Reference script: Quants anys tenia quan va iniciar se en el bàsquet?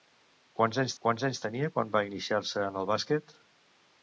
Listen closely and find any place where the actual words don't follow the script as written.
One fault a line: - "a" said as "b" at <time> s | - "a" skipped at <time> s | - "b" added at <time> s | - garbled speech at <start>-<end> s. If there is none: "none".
- "quants anys" added at 1.0 s